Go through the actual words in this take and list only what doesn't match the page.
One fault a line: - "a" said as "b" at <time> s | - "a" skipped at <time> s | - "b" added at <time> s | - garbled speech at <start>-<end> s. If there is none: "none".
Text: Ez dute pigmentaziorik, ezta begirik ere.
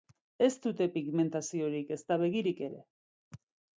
none